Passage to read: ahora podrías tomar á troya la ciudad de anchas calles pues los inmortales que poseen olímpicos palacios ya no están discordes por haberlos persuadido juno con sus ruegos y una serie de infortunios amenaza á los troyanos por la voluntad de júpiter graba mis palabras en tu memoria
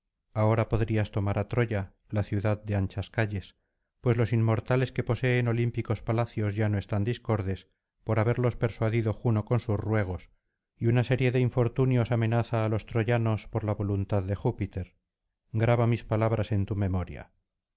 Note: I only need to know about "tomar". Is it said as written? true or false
true